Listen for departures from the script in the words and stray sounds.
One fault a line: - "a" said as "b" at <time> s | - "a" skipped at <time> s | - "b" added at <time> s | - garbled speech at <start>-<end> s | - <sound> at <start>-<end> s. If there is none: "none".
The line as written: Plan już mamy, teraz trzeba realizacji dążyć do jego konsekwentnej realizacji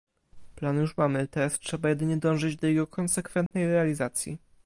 - "realizacji" said as "jedynie" at 1.9 s
- dropout at 3.5-3.5 s